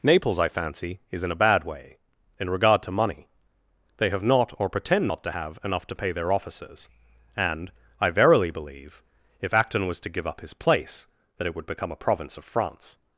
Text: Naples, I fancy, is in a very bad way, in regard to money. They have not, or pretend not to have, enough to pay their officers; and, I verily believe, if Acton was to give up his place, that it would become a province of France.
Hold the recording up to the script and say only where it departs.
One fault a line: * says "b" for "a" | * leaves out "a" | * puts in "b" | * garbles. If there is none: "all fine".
* leaves out "very"